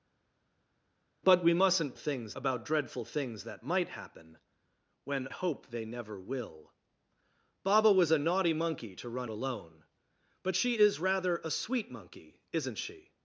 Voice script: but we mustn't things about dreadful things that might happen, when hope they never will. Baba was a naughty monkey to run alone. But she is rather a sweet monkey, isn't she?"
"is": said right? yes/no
yes